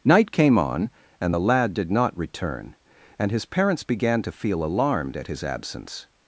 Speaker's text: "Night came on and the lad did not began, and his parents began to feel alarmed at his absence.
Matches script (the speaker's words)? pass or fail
fail